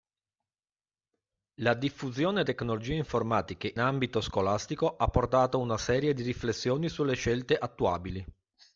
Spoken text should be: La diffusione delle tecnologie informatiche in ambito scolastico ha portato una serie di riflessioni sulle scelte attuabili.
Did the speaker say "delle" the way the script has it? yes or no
no